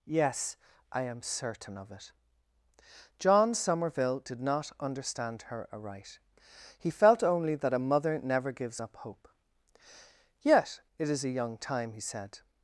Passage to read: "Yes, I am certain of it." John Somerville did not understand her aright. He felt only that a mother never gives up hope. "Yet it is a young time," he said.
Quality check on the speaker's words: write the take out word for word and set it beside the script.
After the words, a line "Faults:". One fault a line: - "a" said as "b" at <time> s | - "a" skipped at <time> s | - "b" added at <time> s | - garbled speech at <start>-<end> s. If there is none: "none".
"Yes, I am certain of it." John Somerville did not understand her aright. He felt only that a mother never gives up hope. "Yet it is a young time," he said.
Faults:
none